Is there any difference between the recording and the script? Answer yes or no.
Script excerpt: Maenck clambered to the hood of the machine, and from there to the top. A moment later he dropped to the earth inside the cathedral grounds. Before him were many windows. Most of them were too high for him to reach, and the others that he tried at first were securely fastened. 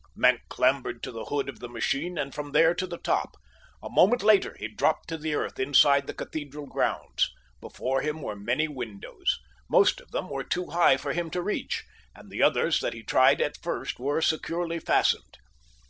no